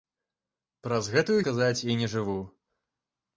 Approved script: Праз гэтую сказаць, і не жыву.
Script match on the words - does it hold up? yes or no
yes